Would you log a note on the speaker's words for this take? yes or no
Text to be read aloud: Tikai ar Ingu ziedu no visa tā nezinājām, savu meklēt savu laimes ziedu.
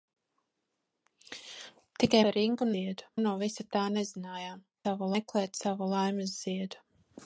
no